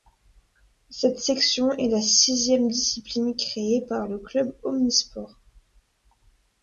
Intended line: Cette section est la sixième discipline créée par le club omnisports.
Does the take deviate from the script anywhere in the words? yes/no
no